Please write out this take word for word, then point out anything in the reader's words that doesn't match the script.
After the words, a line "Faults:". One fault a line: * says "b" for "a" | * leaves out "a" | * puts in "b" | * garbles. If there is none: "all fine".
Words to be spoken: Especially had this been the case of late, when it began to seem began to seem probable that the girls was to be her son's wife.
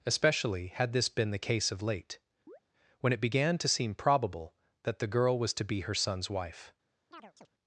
Especially had this been the case of late, when it began to seem probable that the girl was to be her son's wife.
Faults:
* leaves out "began to seem"
* says "girl" for "girls"